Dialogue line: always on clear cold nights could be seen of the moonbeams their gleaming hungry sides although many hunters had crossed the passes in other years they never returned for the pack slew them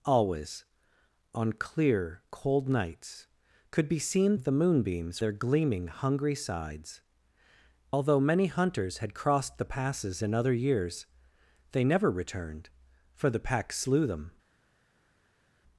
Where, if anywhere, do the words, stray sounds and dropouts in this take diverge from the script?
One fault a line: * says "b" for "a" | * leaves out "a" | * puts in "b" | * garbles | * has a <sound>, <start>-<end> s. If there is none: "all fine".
all fine